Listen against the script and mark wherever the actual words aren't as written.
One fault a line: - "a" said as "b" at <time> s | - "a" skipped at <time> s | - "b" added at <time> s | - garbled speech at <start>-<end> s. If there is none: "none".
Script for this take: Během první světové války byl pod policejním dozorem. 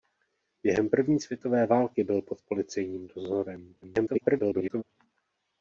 - garbled speech at 3.8-4.8 s